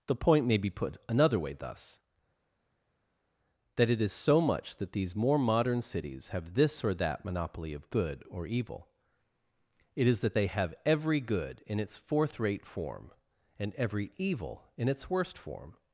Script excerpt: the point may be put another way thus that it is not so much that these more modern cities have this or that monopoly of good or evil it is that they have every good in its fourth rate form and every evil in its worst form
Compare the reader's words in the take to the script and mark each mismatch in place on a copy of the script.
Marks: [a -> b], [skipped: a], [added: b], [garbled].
the point may be put another way thus that it is [skipped: not] so much that these more modern cities have this or that monopoly of good or evil it is that they have every good in its fourth rate form and every evil in its worst form